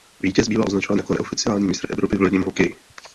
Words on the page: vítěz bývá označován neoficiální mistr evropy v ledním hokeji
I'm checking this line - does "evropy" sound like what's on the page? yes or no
yes